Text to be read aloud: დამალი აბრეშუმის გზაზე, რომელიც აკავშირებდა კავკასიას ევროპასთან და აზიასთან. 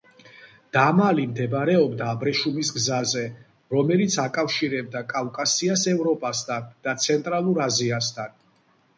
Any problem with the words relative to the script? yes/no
yes